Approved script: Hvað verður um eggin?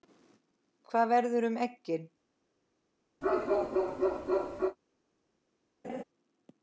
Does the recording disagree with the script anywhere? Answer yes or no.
no